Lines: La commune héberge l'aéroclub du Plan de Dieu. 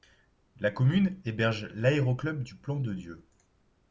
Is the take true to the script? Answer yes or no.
yes